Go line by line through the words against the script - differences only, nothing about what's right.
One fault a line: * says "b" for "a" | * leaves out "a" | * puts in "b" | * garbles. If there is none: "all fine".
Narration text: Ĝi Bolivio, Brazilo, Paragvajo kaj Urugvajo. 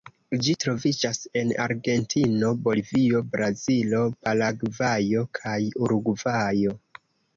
* puts in "troviĝas en Argentino"